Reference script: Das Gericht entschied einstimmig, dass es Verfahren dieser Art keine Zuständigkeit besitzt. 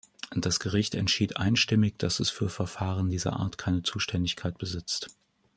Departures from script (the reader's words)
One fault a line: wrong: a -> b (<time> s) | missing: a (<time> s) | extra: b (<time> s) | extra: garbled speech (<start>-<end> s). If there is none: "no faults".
extra: für (2.3 s)